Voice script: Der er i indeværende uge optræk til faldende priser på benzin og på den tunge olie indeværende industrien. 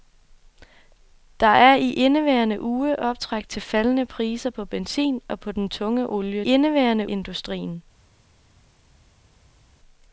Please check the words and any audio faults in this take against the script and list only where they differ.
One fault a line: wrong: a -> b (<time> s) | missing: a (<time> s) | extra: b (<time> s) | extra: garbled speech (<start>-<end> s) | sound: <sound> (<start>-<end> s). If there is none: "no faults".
no faults